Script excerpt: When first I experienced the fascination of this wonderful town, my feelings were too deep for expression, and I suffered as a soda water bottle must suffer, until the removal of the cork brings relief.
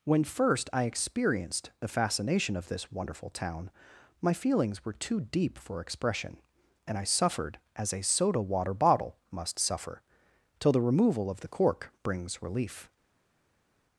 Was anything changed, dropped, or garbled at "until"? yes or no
yes